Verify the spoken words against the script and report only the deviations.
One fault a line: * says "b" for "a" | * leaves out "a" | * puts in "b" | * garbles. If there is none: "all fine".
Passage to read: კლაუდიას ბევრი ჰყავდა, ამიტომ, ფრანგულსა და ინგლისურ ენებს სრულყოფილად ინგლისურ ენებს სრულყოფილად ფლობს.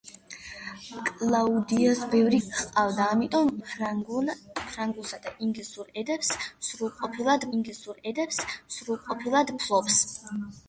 all fine